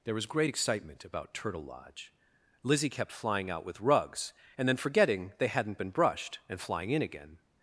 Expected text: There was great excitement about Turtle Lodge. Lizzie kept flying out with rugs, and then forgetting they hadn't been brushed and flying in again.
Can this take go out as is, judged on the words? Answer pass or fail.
pass